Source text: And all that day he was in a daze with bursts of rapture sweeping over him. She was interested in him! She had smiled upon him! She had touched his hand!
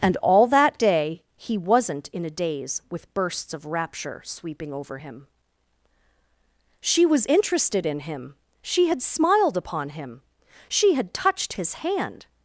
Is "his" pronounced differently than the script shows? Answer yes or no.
no